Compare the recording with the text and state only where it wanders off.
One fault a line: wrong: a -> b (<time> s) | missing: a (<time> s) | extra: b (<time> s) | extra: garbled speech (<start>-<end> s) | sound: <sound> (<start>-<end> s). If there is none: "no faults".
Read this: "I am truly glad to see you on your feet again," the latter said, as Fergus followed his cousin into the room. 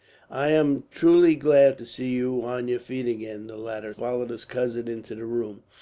missing: said as Fergus (3.9 s)